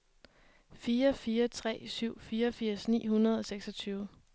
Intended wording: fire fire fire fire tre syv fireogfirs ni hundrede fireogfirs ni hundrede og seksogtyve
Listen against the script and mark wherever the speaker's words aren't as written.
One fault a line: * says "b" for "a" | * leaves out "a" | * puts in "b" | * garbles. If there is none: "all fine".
* leaves out "fire fire"
* leaves out "fireogfirs ni hundrede"